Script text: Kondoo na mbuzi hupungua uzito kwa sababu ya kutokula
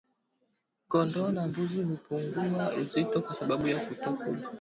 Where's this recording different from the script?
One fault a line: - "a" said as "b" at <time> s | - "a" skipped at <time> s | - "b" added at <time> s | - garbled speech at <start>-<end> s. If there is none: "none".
none